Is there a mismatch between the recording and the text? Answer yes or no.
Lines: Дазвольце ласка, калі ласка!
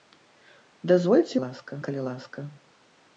no